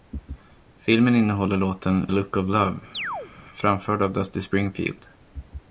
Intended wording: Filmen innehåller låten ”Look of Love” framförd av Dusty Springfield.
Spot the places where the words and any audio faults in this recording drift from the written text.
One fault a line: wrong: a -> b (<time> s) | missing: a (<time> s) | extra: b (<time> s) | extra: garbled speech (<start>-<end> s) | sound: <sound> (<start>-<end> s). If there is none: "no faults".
sound: chirp (2.9-3.3 s)